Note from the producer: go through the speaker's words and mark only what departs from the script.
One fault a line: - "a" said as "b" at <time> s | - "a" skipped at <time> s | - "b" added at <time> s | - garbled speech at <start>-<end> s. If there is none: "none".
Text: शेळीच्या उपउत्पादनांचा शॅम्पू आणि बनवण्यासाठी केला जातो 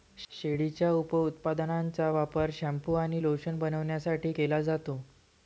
- "वापर" added at 2.1 s
- "लोशन" added at 3.2 s